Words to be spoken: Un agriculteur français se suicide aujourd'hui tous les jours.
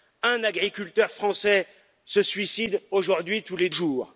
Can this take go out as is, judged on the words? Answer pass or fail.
pass